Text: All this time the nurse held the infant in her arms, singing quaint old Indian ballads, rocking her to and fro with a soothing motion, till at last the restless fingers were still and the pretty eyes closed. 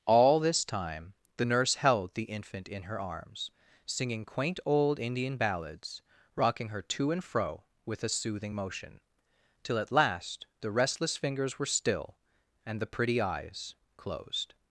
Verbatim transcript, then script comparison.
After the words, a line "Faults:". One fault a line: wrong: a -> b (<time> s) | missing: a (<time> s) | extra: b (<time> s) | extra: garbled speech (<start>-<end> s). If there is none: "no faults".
All this time the nurse held the infant in her arms, singing quaint old Indian ballads, rocking her to and fro with a soothing motion, till at last the restless fingers were still and the pretty eyes closed.
Faults:
no faults